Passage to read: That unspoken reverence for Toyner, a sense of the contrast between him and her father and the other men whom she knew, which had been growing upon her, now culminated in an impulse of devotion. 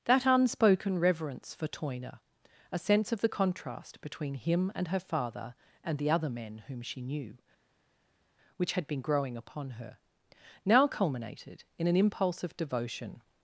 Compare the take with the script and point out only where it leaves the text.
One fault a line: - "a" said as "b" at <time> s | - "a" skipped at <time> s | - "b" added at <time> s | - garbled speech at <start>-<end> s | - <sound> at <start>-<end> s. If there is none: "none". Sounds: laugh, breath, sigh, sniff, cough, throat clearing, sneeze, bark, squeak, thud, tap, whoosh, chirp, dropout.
none